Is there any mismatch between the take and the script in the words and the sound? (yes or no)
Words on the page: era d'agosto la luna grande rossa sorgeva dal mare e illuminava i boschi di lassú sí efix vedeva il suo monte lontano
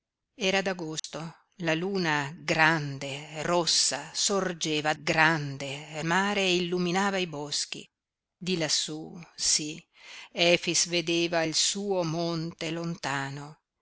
yes